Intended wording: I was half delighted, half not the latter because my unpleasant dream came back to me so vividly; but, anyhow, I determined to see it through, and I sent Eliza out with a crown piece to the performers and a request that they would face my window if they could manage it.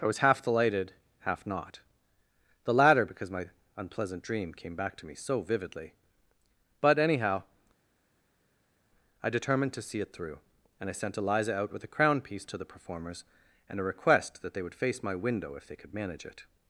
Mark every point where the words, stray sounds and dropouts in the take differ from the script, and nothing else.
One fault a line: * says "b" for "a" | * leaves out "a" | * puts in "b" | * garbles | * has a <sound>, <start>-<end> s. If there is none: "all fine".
all fine